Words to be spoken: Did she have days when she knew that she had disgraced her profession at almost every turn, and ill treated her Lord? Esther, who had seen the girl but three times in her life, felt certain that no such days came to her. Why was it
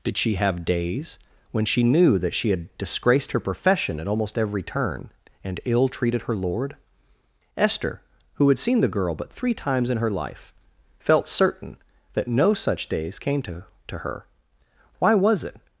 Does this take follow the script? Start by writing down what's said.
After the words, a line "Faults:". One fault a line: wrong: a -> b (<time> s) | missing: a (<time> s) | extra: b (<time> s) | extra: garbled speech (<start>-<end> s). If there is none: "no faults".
Did she have days when she knew that she had disgraced her profession at almost every turn, and ill treated her Lord? Esther, who had seen the girl but three times in her life, felt certain that no such days came to to her. Why was it
Faults:
extra: to (13.9 s)